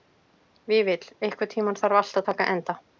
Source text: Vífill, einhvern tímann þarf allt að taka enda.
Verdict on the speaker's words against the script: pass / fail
pass